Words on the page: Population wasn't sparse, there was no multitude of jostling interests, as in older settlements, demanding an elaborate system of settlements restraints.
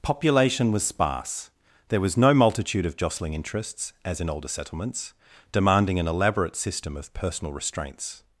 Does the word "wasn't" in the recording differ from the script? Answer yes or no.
yes